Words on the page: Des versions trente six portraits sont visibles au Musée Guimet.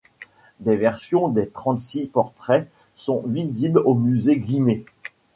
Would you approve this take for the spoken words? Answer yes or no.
no